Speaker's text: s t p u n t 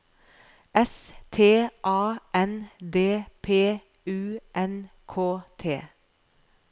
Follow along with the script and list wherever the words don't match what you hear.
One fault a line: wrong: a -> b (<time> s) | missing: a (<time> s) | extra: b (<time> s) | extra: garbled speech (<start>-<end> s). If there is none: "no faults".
extra: a n d (1.8 s)
extra: k (5.1 s)